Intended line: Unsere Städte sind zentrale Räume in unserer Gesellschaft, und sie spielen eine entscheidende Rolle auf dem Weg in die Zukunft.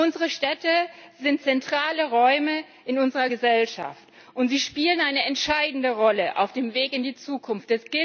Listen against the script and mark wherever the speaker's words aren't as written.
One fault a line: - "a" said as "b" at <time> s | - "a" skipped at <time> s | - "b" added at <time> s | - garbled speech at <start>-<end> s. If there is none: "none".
none